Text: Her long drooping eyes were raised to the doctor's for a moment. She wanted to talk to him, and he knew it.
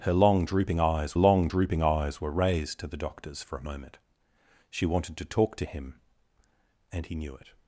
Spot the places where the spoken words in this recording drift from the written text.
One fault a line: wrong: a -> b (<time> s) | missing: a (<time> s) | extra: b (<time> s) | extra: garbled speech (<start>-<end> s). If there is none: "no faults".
extra: long drooping eyes (1.1 s)